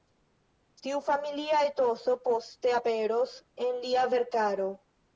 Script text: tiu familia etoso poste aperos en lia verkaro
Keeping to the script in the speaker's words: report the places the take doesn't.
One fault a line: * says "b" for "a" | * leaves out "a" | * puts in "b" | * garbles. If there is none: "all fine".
all fine